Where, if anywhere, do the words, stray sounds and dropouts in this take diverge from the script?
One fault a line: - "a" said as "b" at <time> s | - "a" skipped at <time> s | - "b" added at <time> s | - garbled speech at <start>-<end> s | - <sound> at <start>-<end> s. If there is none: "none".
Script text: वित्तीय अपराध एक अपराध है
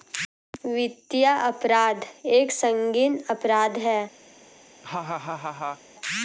- "संगीन" added at 2.5 s
- laugh at 4.8-5.8 s